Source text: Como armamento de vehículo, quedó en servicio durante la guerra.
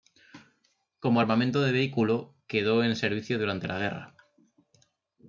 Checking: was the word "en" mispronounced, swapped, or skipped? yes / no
no